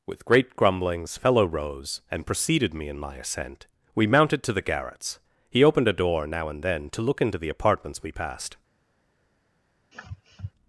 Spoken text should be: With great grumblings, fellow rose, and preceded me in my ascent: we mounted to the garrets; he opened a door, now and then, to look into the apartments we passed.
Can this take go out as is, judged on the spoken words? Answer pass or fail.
pass